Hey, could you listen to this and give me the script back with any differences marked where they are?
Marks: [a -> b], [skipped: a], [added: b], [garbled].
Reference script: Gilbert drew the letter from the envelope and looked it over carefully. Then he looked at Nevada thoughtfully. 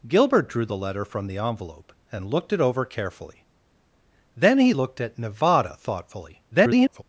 Gilbert drew the letter from the envelope and looked it over carefully. Then he looked at Nevada thoughtfully. [garbled]